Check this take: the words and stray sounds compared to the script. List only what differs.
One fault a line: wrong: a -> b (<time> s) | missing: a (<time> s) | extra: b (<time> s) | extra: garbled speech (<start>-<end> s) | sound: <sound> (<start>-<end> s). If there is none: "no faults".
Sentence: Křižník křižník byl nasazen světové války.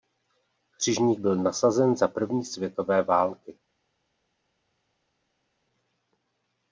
missing: křižník (1.2 s)
extra: za první (2.0 s)